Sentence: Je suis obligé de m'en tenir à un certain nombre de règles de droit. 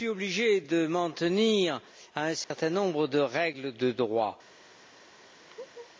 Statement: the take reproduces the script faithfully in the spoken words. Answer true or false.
true